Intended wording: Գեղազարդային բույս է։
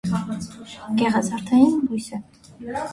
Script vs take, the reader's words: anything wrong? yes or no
no